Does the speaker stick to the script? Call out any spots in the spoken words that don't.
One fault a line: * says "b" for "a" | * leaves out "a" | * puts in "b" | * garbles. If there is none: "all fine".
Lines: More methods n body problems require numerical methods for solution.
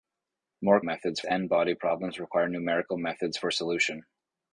all fine